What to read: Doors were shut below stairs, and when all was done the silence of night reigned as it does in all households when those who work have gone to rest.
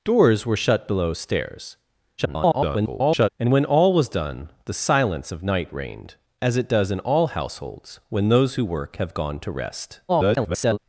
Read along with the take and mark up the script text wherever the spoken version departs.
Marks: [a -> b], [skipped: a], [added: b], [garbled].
Doors were shut below stairs, [garbled] and when all was done the silence of night reigned as it does in all households when those who work have gone to rest. [garbled]